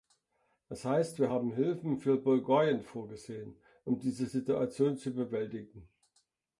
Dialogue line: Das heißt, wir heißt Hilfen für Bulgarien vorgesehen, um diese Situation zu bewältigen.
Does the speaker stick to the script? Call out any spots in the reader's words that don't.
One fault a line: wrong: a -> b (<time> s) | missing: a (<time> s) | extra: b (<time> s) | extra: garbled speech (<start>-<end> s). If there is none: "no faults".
wrong: heißt -> haben (1.3 s)